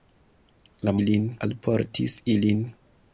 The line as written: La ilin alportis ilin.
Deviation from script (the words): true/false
false